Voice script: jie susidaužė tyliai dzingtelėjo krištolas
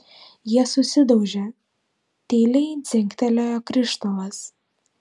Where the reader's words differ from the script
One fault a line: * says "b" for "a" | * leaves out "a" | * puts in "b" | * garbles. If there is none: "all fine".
all fine